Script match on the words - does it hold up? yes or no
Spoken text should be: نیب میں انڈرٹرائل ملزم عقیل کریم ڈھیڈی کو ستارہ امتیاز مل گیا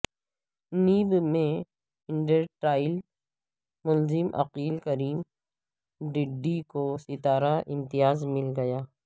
yes